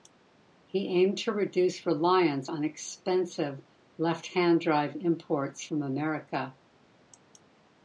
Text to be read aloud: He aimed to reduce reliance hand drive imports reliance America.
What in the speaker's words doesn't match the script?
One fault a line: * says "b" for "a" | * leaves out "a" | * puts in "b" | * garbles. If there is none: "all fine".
* puts in "on expensive left"
* says "from" for "reliance"